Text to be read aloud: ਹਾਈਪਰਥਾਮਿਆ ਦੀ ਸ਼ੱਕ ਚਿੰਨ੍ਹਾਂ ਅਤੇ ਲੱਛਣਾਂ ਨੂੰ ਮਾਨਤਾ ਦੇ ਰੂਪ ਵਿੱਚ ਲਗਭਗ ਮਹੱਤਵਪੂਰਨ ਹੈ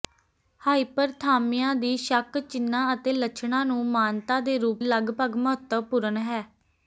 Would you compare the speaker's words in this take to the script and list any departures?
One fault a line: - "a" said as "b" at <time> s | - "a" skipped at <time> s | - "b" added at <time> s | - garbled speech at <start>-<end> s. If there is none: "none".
- "ਵਿੱਚ" skipped at 4.8 s